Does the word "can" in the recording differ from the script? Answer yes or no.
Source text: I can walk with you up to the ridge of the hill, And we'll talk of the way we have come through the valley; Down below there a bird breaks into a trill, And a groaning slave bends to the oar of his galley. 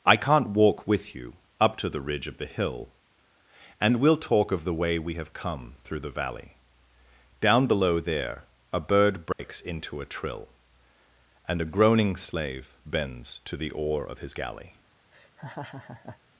yes